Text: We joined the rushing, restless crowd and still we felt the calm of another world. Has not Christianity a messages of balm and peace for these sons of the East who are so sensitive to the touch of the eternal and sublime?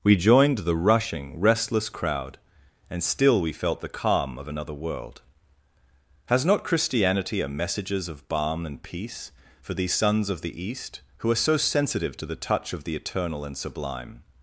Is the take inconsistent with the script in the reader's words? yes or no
no